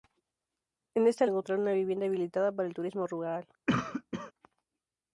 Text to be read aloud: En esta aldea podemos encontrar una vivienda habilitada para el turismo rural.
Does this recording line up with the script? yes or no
no